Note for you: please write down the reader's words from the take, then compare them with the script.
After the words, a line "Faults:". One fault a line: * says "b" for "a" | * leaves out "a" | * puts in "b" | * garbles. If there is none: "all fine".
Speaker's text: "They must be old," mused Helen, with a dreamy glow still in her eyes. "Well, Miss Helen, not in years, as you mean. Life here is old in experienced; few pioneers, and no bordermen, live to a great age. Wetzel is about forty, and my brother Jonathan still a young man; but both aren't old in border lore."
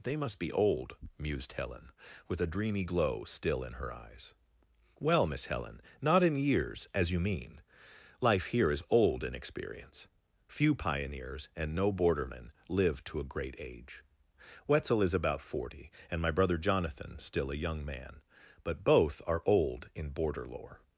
"They must be old," mused Helen, with a dreamy glow still in her eyes. "Well, Miss Helen, not in years, as you mean. Life here is old in experience; few pioneers, and no bordermen, live to a great age. Wetzel is about forty, and my brother Jonathan still a young man; but both are old in border lore."
Faults:
* says "experience" for "experienced"
* says "are" for "aren't"